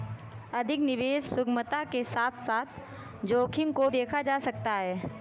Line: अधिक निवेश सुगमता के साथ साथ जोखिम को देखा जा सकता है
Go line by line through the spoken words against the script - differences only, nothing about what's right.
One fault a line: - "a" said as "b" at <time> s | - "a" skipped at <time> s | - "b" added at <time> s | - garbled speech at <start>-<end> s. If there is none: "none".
none